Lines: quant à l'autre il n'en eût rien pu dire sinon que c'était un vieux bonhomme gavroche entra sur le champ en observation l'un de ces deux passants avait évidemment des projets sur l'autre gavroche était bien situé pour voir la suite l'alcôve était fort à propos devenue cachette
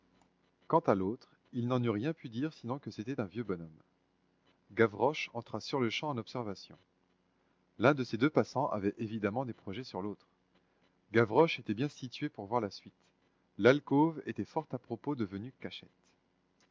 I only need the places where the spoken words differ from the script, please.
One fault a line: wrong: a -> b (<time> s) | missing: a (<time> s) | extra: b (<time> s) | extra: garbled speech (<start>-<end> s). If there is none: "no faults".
no faults